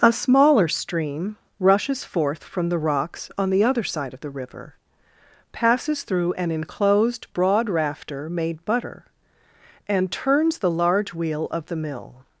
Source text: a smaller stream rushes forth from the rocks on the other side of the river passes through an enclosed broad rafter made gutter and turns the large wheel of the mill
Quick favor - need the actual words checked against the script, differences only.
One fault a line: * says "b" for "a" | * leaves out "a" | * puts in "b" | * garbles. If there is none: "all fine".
* says "butter" for "gutter"